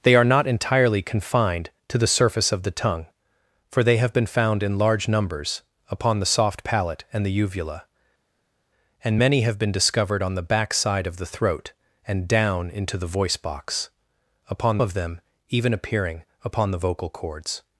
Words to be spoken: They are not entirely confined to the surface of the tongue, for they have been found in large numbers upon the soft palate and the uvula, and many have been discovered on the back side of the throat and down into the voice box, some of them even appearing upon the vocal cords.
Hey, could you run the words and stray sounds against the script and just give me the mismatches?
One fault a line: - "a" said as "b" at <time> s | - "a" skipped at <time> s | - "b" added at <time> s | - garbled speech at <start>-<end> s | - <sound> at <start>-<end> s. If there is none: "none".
- "some" said as "upon" at 14.5 s